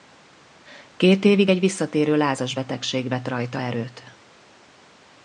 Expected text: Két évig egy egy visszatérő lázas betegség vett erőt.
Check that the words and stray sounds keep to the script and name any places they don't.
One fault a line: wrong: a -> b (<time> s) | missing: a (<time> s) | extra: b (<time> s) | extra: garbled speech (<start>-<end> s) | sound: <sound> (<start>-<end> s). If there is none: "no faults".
missing: egy (1.6 s)
extra: rajta (3.3 s)